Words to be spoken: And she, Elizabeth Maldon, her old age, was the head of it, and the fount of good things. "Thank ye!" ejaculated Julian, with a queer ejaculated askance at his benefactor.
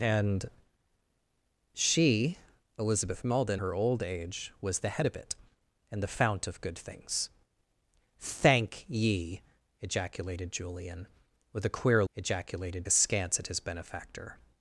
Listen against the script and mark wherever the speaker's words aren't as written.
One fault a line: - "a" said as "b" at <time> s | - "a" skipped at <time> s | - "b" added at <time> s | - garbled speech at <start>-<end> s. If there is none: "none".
none